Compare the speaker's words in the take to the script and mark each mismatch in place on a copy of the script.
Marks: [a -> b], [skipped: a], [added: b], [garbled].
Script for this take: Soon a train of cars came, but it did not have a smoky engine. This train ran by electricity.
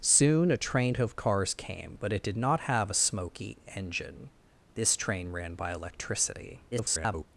Soon a train of cars came, but it did not have a smoky engine. This train ran by electricity. [garbled]